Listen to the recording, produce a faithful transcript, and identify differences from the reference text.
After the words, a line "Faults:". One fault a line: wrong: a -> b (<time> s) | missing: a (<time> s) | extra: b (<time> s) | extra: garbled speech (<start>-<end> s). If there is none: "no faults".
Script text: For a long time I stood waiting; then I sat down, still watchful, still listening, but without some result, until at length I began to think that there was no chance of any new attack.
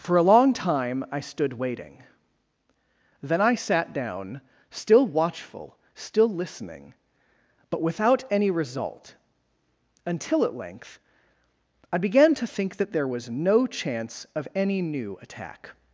For a long time I stood waiting; then I sat down, still watchful, still listening, but without any result, until at length I began to think that there was no chance of any new attack.
Faults:
wrong: some -> any (8.3 s)